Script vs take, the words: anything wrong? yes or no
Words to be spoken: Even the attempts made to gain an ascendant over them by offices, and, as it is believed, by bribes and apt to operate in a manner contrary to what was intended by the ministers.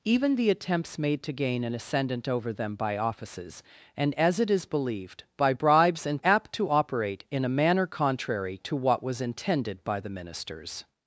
no